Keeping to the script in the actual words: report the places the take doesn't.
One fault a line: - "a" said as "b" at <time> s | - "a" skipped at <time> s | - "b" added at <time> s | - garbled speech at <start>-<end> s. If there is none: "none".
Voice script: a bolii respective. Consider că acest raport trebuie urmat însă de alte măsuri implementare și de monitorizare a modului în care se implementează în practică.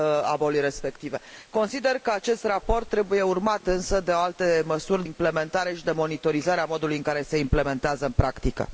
none